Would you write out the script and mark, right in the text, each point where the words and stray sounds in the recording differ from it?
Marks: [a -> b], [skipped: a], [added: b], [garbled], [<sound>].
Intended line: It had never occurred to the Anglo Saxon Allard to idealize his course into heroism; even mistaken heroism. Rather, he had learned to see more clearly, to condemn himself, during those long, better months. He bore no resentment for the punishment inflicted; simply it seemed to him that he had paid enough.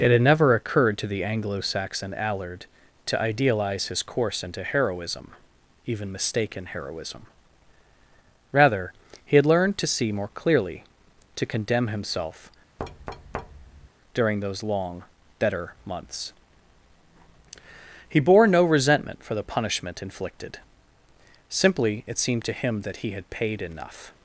It had never occurred to the Anglo Saxon Allard to idealize his course into heroism; even mistaken heroism. Rather, he had learned to see more clearly, to condemn himself, [thud] during those long, better months. He bore no resentment for the punishment inflicted; simply it seemed to him that he had paid enough.